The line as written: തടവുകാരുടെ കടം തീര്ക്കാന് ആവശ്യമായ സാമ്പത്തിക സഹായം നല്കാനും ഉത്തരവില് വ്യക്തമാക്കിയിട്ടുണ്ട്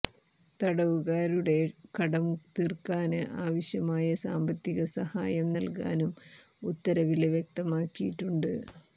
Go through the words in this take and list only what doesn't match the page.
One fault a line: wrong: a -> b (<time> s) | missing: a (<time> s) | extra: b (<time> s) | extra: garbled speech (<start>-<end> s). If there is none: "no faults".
no faults